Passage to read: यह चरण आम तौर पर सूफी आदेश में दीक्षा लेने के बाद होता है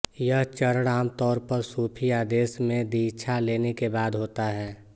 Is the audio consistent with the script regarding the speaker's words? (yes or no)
yes